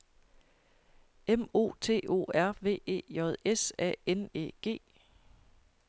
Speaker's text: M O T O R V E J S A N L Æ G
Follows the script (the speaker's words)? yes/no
no